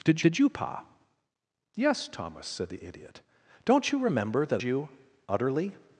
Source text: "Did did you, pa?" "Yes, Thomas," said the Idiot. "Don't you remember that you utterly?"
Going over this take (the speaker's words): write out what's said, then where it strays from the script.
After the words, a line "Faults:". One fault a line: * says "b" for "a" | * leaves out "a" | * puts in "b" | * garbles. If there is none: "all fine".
"Did did you, pa?" "Yes, Thomas," said the Idiot. "Don't you remember that you utterly?"
Faults:
all fine